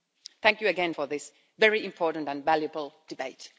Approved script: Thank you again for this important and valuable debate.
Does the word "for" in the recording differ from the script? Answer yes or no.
no